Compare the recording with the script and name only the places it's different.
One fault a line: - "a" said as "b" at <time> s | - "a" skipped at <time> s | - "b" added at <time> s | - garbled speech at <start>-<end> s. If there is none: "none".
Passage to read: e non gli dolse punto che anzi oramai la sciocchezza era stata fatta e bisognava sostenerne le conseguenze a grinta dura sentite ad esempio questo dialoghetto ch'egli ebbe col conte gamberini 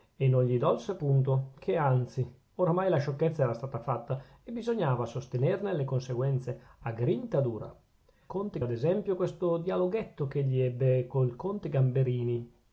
- "sentite" said as "conte" at 8.3 s